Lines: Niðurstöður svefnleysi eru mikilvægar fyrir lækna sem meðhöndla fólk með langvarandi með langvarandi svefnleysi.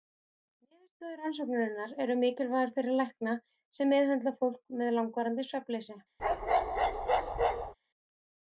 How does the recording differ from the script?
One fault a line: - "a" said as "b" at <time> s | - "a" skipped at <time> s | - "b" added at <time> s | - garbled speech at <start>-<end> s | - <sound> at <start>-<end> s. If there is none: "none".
- "svefnleysi" said as "rannsóknarinnar" at 1.2 s
- "með langvarandi" skipped at 5.5 s
- bark at 6.2-7.7 s